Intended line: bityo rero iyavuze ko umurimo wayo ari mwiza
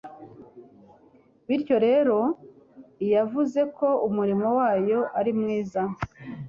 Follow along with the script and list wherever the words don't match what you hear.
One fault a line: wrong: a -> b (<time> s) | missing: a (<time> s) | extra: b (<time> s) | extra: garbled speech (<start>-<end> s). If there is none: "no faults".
no faults